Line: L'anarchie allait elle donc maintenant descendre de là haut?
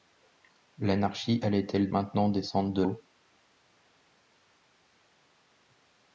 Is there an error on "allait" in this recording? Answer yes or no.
no